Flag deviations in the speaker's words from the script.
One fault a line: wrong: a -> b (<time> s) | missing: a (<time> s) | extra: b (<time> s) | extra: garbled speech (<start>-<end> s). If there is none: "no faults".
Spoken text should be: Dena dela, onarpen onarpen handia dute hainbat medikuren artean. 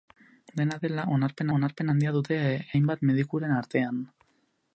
no faults